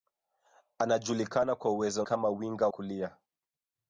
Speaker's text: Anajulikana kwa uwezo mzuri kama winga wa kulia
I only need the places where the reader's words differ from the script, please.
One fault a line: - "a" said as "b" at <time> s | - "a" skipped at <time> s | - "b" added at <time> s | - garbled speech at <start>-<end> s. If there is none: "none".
- "mzuri" skipped at 2.0 s
- "wa" skipped at 2.7 s